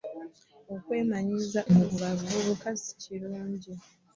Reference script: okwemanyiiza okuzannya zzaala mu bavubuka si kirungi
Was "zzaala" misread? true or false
true